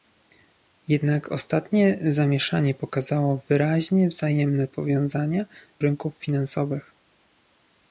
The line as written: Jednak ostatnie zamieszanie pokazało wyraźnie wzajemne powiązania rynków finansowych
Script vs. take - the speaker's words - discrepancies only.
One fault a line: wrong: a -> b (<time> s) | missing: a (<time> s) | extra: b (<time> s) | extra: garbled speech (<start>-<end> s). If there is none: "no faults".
no faults